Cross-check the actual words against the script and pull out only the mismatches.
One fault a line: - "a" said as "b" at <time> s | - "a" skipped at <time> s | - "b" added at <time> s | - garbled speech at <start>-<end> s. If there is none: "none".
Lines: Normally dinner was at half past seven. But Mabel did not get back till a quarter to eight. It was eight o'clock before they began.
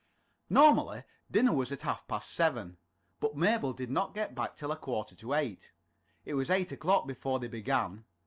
none